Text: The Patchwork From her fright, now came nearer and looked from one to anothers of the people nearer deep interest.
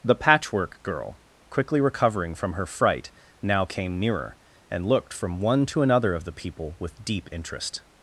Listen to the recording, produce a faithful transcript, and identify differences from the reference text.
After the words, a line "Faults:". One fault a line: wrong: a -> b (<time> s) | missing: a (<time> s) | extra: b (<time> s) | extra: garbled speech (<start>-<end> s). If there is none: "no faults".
The Patchwork Girl, quickly recovering from her fright, now came nearer and looked from one to another of the people with deep interest.
Faults:
extra: Girl quickly recovering (0.8 s)
wrong: anothers -> another (5.8 s)
wrong: nearer -> with (6.8 s)